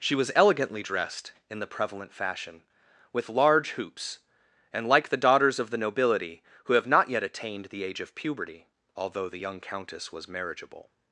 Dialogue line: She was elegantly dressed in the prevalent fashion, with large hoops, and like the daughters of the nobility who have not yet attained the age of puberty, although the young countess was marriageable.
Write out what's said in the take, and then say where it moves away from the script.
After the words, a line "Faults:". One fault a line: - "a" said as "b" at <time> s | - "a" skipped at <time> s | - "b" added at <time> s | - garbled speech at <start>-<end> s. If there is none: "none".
She was elegantly dressed in the prevalent fashion, with large hoops, and like the daughters of the nobility who have not yet attained the age of puberty, although the young countess was marriageable.
Faults:
none